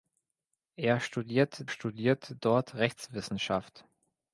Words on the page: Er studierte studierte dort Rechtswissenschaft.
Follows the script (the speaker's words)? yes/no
yes